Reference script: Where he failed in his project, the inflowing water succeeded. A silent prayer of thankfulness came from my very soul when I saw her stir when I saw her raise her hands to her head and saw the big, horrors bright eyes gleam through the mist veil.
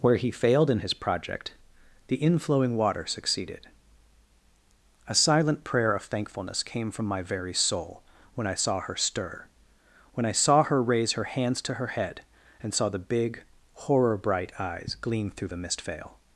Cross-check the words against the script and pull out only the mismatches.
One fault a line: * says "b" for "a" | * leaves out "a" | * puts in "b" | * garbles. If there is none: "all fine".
* says "horror" for "horrors"